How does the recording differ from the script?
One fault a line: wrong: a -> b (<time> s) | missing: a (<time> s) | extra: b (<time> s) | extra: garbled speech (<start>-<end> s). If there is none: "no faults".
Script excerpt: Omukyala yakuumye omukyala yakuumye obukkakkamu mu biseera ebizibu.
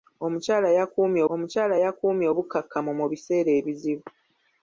no faults